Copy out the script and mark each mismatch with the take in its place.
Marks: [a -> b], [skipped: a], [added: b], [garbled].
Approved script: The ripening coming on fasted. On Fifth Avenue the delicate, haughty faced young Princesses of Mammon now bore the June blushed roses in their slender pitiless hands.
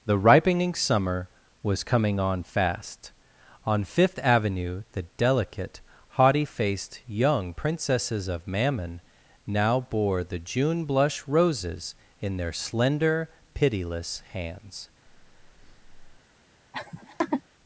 The ripening [added: summer was] coming on [fasted. -> fast] On Fifth Avenue the delicate, haughty faced young Princesses of Mammon now bore the June [blushed -> blush] roses in their slender pitiless hands.